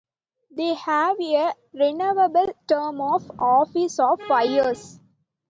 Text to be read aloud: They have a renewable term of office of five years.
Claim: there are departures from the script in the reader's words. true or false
false